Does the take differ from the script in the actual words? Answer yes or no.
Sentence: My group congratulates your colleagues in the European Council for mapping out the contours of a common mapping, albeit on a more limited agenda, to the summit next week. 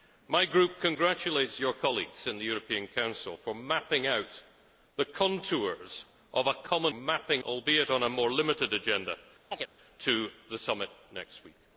no